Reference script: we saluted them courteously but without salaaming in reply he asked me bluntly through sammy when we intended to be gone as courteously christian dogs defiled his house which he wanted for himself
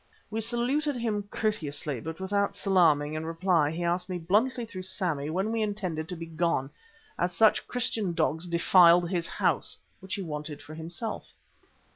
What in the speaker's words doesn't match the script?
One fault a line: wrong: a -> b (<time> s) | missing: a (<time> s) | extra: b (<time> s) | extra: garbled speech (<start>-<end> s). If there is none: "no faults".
wrong: them -> him (0.9 s)
wrong: courteously -> such (7.3 s)